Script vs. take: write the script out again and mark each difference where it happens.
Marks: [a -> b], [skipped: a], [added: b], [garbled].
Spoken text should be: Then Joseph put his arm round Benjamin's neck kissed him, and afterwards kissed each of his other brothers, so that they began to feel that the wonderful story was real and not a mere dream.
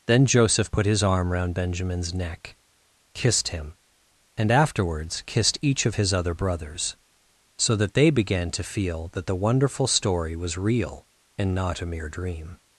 Then Joseph put his arm round Benjamin's neck kissed him, and afterwards kissed each of his other brothers, so that they began to feel that the wonderful story was real and not a mere dream.